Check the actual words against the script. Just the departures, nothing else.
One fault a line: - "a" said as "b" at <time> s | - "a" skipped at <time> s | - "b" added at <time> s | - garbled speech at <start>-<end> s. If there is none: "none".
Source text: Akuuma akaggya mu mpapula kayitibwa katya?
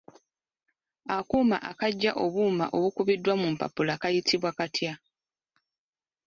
- "obuuma obukubiddwa" added at 2.2 s